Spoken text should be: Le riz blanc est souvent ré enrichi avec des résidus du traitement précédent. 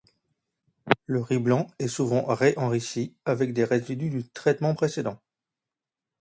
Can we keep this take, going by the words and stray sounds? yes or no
yes